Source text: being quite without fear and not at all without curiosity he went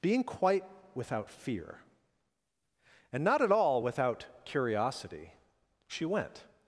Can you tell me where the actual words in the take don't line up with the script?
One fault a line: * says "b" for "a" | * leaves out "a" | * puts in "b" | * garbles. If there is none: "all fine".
* says "she" for "he"